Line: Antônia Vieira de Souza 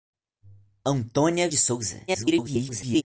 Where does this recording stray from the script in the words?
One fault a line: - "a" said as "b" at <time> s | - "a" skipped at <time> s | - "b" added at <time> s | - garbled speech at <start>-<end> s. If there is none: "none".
- "Vieira" skipped at 1.5 s
- garbled speech at 2.1-3.0 s